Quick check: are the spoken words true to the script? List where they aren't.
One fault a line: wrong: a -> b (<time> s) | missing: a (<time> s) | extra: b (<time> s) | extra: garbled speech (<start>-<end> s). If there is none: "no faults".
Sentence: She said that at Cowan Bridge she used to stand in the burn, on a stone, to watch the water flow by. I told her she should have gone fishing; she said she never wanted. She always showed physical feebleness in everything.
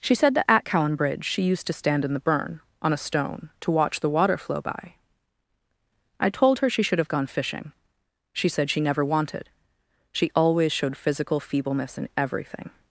no faults